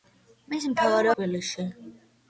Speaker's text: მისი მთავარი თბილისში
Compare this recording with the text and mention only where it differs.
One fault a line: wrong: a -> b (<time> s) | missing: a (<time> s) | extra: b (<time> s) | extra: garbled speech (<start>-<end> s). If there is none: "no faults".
no faults